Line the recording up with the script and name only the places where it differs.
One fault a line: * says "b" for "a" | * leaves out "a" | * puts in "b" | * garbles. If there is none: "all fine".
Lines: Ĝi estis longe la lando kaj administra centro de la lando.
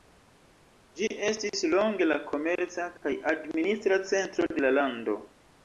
* says "komerca" for "lando"